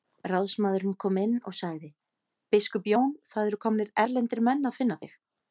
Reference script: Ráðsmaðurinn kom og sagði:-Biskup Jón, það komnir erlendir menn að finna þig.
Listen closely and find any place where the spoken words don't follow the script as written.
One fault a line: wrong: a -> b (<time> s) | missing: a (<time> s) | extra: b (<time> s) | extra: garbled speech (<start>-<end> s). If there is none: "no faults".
extra: inn (1.2 s)
extra: eru (3.5 s)